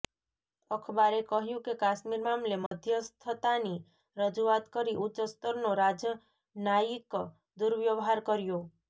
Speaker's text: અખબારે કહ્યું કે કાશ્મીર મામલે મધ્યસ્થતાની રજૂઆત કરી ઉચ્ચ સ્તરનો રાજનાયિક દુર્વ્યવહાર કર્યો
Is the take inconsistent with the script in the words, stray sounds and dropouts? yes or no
yes